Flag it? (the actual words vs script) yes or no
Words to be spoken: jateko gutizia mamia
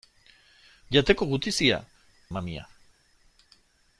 no